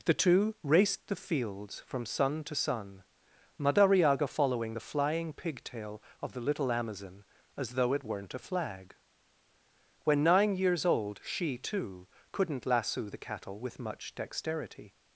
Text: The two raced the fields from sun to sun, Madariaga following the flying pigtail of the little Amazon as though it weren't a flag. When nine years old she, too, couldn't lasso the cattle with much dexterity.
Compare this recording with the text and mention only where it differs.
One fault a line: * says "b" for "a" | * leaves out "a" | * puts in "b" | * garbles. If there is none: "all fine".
all fine